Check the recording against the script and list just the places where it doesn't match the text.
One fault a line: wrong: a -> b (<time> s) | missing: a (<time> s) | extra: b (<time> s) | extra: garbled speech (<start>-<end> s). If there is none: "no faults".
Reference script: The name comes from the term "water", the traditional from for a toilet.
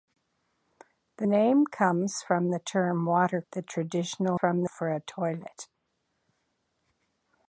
no faults